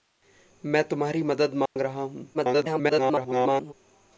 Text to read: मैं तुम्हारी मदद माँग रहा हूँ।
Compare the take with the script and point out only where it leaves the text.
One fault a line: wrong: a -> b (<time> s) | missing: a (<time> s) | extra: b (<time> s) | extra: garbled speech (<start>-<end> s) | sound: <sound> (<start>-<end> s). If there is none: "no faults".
sound: dropout (1.7-1.8 s)
extra: garbled speech (2.3-3.7 s)